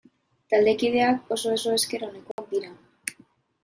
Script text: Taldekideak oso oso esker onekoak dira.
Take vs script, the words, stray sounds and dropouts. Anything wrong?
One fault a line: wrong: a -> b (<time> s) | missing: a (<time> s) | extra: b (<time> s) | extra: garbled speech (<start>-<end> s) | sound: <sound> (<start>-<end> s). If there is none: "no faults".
sound: dropout (2.3-2.4 s)